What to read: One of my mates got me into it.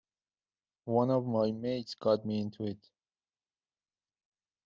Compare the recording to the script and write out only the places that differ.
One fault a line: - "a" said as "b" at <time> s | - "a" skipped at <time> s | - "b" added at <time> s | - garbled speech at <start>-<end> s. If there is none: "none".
none